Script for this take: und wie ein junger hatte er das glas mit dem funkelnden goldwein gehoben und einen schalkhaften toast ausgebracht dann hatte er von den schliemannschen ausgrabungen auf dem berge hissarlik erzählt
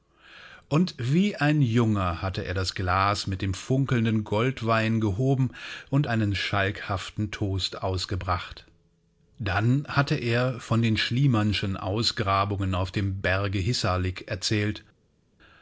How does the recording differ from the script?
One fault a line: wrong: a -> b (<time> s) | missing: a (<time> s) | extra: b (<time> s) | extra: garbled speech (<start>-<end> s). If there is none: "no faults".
no faults